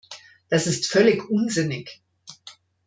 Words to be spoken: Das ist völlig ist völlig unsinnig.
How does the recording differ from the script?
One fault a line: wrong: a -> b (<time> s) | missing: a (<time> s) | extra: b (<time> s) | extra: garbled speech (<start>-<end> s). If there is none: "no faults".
missing: ist völlig (1.3 s)